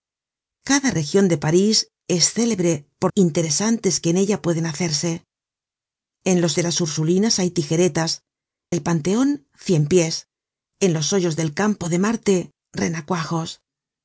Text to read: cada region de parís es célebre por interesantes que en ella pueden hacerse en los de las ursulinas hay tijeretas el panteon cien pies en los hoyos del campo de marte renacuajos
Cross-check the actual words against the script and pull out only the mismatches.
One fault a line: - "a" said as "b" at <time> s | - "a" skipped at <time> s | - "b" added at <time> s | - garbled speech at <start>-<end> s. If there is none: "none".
none